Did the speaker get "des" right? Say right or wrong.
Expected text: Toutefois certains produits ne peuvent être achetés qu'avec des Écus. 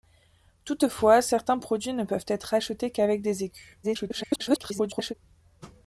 right